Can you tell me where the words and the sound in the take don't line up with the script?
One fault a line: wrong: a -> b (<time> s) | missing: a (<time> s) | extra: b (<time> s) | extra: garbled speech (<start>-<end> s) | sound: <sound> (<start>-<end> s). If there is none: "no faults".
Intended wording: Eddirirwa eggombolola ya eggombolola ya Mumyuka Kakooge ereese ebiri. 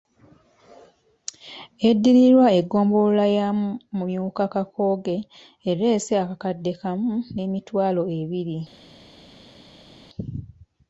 missing: eggombolola ya (3.5 s)
extra: akakadde kamu n'emitwalo (6.2 s)